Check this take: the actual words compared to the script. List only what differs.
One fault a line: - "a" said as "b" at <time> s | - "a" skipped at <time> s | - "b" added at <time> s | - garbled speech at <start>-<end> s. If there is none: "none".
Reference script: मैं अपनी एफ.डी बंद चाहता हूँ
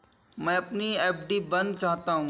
none